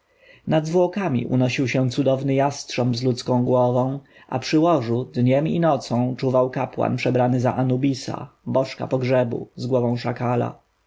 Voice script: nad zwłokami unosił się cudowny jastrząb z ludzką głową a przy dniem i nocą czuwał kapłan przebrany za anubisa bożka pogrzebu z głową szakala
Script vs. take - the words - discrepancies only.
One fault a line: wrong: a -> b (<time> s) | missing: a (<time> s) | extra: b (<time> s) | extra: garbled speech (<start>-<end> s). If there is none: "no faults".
extra: łożu (4.6 s)